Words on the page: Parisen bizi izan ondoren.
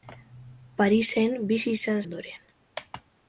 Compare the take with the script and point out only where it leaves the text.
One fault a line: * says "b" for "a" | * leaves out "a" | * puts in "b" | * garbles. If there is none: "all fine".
all fine